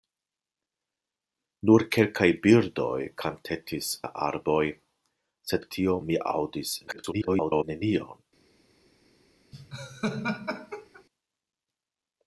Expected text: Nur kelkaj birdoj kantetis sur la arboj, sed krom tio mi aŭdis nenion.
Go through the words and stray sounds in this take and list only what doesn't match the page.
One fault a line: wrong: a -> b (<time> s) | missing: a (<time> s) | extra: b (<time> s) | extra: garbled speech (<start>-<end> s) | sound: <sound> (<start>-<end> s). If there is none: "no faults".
missing: sur (3.9 s)
missing: krom (5.7 s)
extra: garbled speech (6.9-7.6 s)
sound: laugh (9.5-11.0 s)